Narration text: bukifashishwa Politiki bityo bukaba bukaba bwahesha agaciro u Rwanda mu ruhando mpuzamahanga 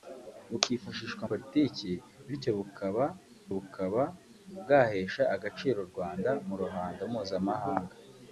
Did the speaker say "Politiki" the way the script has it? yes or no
yes